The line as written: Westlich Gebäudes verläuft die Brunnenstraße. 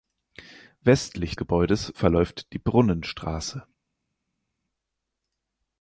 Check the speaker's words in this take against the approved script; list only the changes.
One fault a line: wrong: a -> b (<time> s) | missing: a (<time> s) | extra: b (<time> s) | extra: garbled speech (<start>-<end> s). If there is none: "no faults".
no faults